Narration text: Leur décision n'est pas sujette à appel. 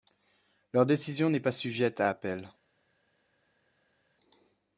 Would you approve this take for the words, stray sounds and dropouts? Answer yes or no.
yes